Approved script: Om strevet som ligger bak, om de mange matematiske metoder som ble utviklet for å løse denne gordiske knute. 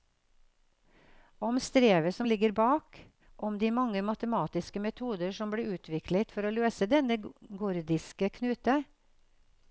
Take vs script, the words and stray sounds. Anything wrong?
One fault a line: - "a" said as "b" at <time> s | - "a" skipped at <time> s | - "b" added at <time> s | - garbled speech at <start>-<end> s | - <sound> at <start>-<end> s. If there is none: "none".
none